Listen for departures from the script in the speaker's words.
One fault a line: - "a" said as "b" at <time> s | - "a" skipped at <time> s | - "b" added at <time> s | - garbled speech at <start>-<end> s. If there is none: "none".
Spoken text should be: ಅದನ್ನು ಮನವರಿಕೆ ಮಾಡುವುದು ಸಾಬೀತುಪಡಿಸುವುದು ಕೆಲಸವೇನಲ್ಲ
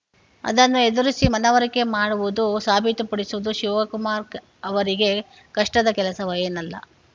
- "ಎದುರಿಸಿ" added at 0.8 s
- "ಶಿವಕುಮಾರ್ ಅವರಿಗೆ ಕಷ್ಟದ" added at 3.5 s